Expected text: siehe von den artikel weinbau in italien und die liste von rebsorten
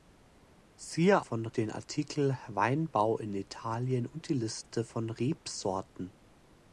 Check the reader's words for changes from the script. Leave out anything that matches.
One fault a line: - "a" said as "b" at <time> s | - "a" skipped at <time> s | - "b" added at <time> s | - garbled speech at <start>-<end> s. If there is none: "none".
none